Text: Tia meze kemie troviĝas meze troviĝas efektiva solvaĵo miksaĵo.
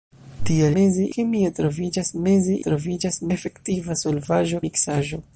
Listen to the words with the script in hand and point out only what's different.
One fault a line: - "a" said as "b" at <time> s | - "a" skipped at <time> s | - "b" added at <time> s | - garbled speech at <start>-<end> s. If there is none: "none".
none